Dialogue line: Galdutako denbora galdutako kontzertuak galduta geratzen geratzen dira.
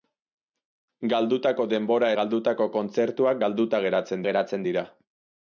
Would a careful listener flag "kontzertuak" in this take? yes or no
no